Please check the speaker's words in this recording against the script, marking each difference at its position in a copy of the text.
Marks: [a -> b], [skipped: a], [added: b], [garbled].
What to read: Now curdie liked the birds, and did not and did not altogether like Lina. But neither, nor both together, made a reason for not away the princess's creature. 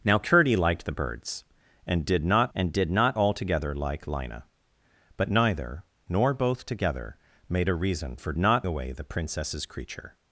Now curdie liked the birds, and did not and did not altogether like Lina. But neither, nor both together, made a reason for not away the princess's creature.